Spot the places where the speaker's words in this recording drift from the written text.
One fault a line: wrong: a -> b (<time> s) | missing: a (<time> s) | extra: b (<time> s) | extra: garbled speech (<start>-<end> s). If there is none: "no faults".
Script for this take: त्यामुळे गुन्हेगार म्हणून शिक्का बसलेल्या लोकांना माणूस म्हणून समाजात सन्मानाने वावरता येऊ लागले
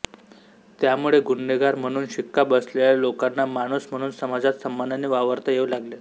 no faults